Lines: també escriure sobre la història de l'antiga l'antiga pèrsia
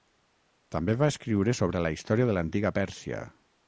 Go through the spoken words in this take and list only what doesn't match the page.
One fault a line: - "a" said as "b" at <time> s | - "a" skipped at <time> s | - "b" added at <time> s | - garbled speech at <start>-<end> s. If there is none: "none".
- "va" added at 1.0 s
- "l'antiga" skipped at 2.7 s